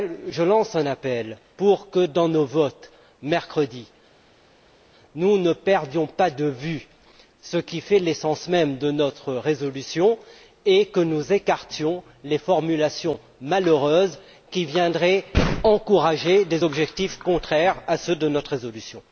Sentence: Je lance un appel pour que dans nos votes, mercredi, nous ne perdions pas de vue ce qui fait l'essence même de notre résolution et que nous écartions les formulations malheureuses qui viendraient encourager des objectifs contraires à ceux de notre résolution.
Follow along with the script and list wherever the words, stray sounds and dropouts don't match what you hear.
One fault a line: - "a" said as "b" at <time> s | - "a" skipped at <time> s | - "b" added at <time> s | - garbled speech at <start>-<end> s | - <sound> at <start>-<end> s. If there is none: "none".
none